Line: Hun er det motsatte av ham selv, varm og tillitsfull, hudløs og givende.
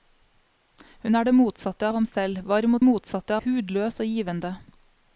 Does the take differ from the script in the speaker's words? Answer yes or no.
yes